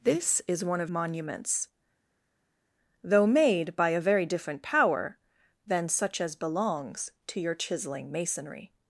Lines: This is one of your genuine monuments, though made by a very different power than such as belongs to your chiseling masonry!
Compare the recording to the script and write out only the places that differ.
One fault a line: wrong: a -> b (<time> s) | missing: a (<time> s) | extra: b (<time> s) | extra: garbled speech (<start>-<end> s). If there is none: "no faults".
missing: your genuine (0.9 s)